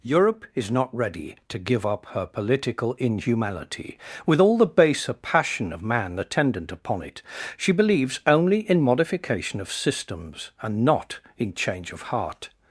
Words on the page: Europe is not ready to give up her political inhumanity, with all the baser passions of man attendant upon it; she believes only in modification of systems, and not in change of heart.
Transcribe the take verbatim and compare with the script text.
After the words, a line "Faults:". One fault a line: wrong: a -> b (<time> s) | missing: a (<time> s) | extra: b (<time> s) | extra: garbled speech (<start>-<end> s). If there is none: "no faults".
Europe is not ready to give up her political inhumanity, with all the baser passion of man attendant upon it; she believes only in modification of systems, and not in change of heart.
Faults:
wrong: passions -> passion (5.1 s)